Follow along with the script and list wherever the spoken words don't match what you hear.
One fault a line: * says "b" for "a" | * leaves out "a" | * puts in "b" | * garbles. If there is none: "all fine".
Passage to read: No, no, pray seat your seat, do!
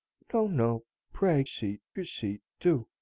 all fine